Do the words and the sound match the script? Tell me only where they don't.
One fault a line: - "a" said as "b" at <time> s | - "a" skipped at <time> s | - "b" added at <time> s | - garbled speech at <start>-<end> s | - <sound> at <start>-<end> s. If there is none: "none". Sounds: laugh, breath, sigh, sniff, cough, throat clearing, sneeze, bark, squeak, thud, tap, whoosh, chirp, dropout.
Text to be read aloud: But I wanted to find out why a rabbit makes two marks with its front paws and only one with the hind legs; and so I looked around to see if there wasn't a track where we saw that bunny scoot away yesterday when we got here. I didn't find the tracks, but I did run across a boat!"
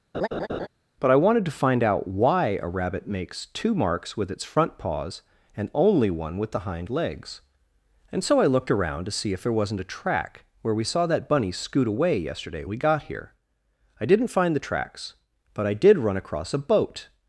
- laugh at 0.1-0.7 s
- "when" skipped at 12.6 s